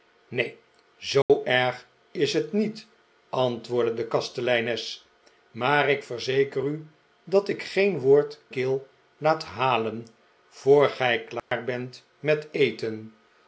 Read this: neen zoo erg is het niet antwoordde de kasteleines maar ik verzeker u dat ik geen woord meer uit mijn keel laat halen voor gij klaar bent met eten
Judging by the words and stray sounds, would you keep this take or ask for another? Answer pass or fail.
fail